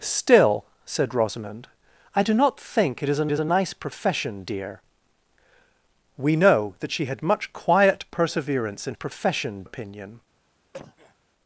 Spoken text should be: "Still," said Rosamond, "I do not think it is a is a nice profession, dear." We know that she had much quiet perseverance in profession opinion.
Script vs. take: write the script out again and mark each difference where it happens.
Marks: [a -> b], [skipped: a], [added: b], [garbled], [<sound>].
"Still," said Rosamond, "I do not think it is a is a nice profession, dear." We know that she had much quiet perseverance in profession opinion. [cough]